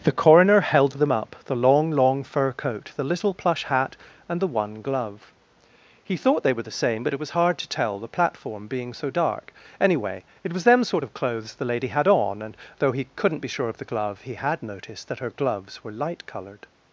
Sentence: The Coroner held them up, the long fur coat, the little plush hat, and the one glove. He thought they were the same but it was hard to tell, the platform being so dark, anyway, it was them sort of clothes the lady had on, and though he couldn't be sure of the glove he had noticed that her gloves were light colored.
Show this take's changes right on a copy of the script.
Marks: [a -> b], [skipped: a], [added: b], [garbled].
The Coroner held them up, the long [added: long] fur coat, the little plush hat, and the one glove. He thought they were the same but it was hard to tell, the platform being so dark, anyway, it was them sort of clothes the lady had on, and though he couldn't be sure of the glove he had noticed that her gloves were light colored.